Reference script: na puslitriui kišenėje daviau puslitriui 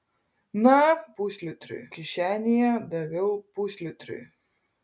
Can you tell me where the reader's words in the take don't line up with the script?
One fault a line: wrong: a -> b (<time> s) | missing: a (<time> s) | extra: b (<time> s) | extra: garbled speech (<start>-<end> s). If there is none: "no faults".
no faults